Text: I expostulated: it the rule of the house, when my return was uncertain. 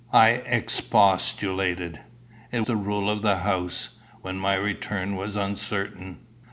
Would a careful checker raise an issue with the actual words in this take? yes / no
no